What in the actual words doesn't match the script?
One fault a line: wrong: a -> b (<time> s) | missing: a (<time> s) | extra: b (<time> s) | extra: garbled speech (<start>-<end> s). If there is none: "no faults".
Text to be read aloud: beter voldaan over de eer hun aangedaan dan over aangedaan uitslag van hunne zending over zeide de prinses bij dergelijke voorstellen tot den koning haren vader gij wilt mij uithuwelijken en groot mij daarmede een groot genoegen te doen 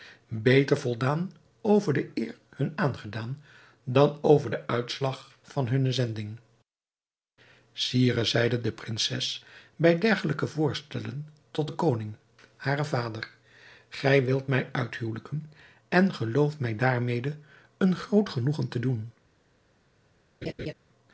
wrong: aangedaan -> den (4.5 s)
wrong: over -> sire (7.7 s)
wrong: groot -> gelooft (16.1 s)